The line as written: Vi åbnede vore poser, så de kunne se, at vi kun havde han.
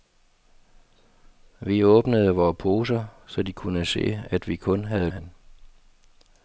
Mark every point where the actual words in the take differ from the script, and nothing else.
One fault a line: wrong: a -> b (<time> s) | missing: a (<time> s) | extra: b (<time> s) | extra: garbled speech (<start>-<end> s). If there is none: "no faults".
no faults